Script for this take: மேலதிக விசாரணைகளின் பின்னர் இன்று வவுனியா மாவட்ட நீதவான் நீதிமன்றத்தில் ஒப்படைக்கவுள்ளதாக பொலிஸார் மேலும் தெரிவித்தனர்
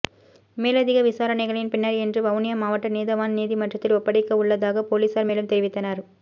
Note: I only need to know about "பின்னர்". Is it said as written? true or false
true